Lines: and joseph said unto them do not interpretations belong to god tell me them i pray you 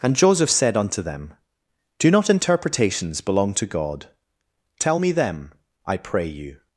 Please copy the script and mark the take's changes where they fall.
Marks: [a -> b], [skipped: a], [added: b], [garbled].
and joseph said unto them do not interpretations belong to god tell me them i pray you